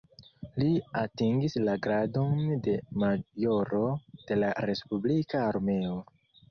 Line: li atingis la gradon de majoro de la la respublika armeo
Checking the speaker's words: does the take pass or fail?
fail